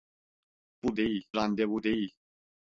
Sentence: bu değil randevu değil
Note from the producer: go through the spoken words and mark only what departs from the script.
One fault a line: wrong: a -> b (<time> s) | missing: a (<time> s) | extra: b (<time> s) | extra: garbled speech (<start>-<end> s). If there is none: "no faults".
no faults